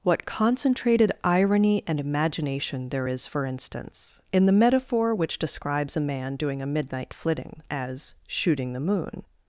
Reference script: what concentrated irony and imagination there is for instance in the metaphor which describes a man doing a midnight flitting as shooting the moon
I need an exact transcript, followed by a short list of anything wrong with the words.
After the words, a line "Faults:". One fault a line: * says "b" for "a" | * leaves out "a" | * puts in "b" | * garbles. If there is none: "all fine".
what concentrated irony and imagination there is for instance in the metaphor which describes a man doing a midnight flitting as shooting the moon
Faults:
all fine